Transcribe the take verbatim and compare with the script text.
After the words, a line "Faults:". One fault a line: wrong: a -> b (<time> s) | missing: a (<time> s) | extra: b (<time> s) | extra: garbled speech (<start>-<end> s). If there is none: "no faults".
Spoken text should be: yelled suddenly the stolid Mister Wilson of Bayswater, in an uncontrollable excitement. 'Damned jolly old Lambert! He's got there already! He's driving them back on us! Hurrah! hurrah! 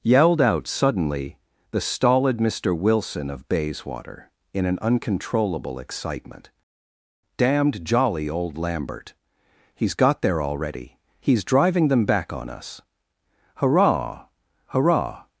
yelled out suddenly the stolid Mister Wilson of Bayswater, in an uncontrollable excitement. 'Damned jolly old Lambert! He's got there already! He's driving them back on us! Hurrah! hurrah!
Faults:
extra: out (0.4 s)